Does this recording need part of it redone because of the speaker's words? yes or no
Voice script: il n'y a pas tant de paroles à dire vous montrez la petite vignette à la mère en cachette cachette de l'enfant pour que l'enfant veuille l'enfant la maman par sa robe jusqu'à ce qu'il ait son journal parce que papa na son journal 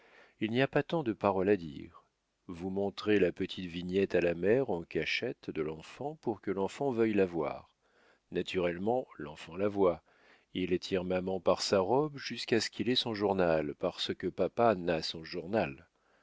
yes